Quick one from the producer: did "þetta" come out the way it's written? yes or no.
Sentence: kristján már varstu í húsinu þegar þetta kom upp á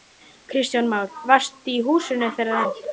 no